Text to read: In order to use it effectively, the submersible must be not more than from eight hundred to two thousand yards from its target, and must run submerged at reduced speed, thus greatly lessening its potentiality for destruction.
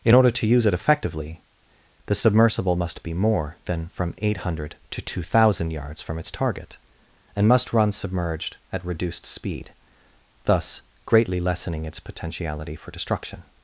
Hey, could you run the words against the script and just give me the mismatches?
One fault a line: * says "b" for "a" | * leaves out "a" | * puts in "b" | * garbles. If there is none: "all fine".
* leaves out "not"